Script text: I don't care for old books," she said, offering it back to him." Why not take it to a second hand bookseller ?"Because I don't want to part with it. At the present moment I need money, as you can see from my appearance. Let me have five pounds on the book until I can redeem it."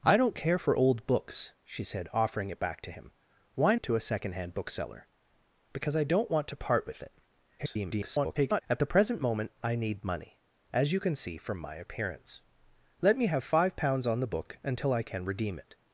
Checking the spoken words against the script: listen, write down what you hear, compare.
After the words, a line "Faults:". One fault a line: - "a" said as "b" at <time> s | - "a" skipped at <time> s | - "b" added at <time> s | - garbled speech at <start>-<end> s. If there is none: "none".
I don't care for old books," she said, offering it back to him." Why it to a second hand bookseller ?"Because I don't want to part with it. [garbled] At the present moment I need money, as you can see from my appearance. Let me have five pounds on the book until I can redeem it."
Faults:
- "not take" skipped at 3.8 s
- garbled speech at 7.6-8.6 s